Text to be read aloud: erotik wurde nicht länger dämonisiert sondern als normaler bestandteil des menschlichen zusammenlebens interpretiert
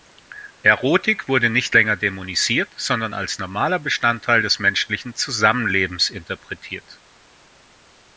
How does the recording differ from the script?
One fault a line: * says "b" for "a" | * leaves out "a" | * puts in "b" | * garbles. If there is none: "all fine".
all fine